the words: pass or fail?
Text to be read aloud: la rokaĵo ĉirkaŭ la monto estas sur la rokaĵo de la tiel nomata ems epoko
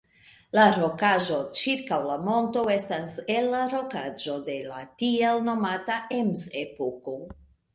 fail